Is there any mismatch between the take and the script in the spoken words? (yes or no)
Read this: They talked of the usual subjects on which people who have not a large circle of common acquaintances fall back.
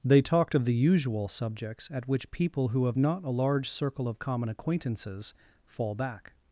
yes